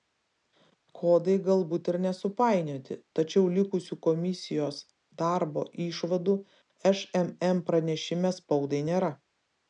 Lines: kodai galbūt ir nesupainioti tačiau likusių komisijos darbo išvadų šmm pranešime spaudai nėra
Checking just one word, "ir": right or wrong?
right